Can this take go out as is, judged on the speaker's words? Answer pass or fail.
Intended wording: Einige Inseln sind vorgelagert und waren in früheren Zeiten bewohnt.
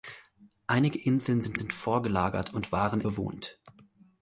fail